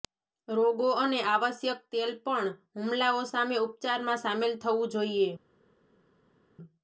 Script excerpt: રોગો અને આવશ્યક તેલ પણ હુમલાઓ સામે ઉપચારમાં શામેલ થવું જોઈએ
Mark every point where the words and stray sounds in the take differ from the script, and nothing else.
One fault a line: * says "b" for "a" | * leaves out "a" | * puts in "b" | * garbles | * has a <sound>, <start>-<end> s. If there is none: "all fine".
all fine